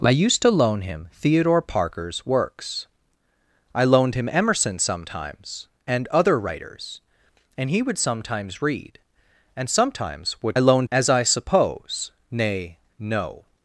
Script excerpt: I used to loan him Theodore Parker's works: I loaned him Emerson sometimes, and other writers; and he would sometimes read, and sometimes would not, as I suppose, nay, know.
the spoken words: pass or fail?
fail